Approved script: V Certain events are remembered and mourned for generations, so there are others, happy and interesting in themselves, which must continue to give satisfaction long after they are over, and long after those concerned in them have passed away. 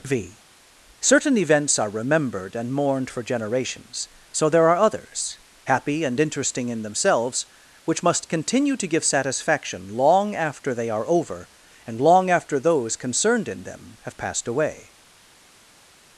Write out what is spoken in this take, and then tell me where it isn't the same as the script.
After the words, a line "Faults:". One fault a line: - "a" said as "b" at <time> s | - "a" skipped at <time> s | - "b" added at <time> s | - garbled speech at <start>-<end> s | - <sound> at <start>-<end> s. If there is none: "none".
V Certain events are remembered and mourned for generations, so there are others, happy and interesting in themselves, which must continue to give satisfaction long after they are over, and long after those concerned in them have passed away.
Faults:
none